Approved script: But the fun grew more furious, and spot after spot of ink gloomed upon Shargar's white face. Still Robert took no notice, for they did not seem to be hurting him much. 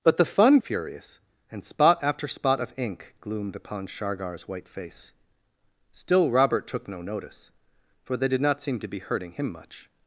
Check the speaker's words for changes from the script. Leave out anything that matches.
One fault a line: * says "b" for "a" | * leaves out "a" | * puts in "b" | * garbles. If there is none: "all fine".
* leaves out "grew more"